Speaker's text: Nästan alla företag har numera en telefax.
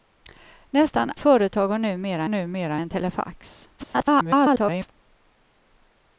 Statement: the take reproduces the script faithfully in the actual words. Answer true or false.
false